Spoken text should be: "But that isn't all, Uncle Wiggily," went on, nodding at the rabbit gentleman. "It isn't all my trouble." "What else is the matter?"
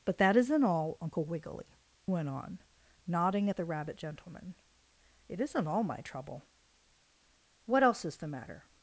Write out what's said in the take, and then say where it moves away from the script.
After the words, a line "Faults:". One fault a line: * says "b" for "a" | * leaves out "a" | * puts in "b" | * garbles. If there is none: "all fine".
"But that isn't all, Uncle Wiggily," went on, nodding at the rabbit gentleman. "It isn't all my trouble." "What else is the matter?"
Faults:
all fine